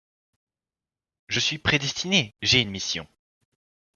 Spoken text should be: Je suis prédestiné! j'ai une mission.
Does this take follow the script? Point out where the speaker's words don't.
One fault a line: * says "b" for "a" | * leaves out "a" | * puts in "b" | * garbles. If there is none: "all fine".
all fine